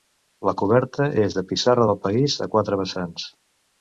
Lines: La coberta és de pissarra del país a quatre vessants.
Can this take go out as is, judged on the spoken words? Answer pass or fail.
pass